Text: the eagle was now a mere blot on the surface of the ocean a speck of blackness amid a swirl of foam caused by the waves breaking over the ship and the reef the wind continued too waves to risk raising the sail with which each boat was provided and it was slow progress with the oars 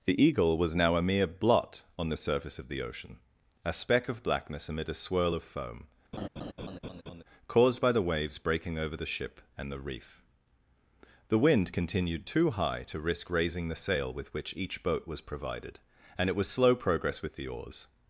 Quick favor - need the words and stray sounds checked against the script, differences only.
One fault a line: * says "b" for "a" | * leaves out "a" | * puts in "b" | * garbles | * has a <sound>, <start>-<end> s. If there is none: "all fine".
* has a laugh, 6.1-7.2 s
* says "high" for "waves"